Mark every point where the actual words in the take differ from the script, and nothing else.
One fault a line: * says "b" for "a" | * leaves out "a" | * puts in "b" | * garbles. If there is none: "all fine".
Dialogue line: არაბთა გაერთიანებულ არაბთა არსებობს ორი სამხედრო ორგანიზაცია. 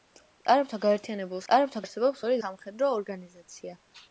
all fine